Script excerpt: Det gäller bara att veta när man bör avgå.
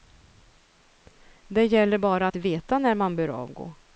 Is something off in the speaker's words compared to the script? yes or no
no